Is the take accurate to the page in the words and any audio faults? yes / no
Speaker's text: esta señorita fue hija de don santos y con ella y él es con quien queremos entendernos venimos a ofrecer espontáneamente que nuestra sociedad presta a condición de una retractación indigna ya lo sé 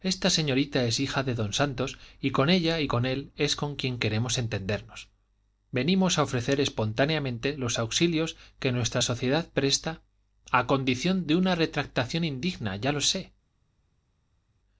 no